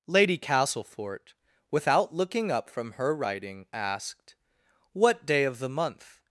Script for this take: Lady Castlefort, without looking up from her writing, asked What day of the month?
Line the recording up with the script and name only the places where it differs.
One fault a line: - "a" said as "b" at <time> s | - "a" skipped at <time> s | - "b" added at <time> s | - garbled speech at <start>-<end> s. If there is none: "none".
none